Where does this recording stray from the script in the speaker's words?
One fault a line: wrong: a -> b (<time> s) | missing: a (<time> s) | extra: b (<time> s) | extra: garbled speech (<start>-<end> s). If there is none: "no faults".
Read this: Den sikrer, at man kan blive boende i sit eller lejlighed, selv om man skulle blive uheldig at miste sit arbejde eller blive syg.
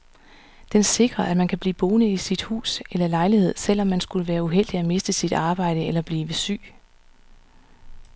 extra: hus (2.4 s)
wrong: blive -> være (4.3 s)